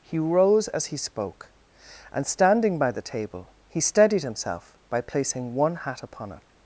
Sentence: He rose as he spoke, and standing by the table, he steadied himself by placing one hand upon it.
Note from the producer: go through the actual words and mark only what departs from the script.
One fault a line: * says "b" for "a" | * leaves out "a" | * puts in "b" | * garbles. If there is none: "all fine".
* says "hat" for "hand"